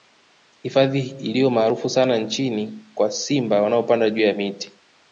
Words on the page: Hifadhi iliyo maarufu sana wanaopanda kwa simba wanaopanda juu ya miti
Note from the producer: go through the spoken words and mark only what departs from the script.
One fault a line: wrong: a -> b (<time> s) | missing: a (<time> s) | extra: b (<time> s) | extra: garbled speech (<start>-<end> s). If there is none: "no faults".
wrong: wanaopanda -> nchini (2.2 s)